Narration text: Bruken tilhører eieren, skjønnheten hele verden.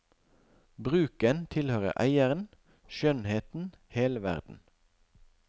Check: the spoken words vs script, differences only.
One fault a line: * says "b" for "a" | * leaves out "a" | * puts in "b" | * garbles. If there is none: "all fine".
all fine